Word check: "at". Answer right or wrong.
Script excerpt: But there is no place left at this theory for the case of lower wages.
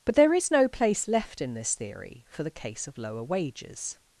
wrong